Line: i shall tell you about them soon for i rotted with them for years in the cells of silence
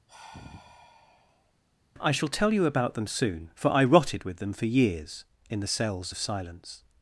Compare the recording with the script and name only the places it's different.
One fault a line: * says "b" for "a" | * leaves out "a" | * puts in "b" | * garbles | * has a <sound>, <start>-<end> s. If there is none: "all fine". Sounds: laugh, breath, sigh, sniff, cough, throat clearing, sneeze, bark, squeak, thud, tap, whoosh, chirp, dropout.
* has a sigh, 0.1-1.5 s